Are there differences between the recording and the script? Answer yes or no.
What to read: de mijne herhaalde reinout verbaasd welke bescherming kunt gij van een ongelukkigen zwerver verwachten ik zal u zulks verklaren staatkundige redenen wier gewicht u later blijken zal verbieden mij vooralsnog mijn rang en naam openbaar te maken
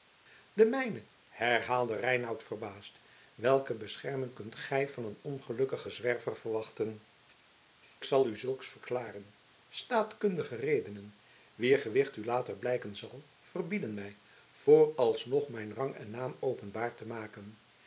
yes